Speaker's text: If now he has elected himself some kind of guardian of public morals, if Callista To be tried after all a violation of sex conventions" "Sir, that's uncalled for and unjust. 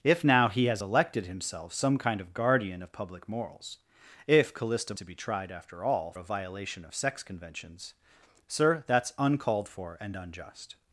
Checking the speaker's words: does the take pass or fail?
pass